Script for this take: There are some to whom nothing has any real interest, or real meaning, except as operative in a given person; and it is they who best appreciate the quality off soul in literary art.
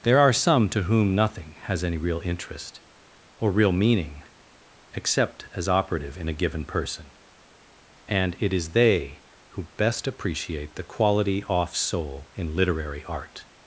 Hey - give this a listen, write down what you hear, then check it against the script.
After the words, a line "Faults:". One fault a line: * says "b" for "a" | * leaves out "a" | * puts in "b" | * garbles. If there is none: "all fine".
There are some to whom nothing has any real interest, or real meaning, except as operative in a given person; and it is they who best appreciate the quality off soul in literary art.
Faults:
all fine